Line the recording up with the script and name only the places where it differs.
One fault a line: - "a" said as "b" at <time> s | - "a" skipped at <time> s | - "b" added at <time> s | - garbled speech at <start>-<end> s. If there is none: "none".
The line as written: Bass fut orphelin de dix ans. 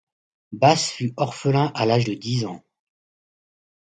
- "à l'âge" added at 1.8 s